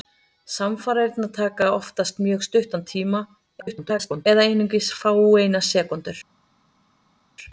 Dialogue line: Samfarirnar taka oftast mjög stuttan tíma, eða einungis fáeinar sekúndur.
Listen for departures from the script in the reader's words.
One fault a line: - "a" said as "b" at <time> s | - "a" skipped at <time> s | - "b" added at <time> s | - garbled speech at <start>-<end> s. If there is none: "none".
- garbled speech at 3.6-4.3 s